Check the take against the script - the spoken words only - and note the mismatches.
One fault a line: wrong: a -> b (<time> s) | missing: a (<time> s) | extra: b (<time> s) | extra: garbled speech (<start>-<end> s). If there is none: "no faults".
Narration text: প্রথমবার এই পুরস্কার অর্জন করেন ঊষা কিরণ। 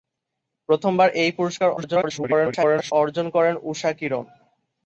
extra: garbled speech (1.8-2.9 s)